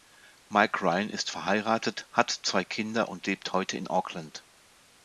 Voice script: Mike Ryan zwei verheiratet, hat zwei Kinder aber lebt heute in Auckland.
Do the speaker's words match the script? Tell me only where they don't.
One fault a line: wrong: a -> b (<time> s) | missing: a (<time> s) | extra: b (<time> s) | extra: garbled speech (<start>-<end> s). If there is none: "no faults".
wrong: zwei -> ist (1.1 s)
wrong: aber -> und (3.1 s)